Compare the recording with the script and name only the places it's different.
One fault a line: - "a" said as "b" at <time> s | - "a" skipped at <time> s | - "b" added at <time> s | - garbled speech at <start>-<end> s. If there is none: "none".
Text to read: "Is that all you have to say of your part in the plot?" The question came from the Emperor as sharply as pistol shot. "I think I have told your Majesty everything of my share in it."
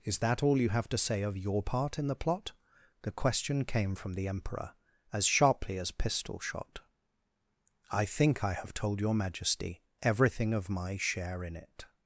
none